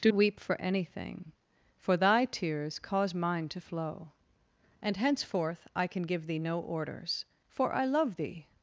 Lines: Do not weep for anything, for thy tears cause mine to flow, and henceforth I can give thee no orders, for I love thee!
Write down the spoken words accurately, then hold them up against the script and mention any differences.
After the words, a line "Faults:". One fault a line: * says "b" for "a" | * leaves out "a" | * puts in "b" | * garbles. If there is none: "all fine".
Do weep for anything, for thy tears cause mine to flow, and henceforth I can give thee no orders, for I love thee!
Faults:
* leaves out "not"